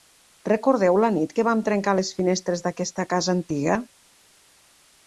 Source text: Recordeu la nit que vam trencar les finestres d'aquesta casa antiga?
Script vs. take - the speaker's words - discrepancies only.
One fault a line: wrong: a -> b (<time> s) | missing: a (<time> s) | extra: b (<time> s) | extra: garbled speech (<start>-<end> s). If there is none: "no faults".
no faults